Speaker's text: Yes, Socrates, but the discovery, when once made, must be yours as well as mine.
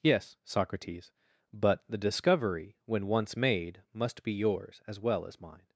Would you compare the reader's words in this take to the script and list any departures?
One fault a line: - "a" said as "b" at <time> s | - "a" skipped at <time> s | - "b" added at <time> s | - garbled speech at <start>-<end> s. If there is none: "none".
none